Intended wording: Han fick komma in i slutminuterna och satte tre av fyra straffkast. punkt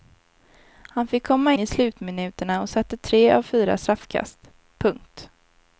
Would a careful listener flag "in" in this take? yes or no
yes